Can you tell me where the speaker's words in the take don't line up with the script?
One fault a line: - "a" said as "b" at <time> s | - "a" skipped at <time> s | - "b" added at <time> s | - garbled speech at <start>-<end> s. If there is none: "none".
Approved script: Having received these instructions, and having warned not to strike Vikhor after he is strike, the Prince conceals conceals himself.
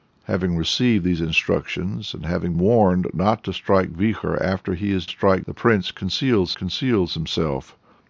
none